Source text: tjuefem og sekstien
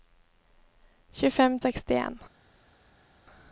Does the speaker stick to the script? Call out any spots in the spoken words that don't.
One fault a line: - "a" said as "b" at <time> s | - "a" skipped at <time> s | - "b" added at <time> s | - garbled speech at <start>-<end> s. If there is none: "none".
none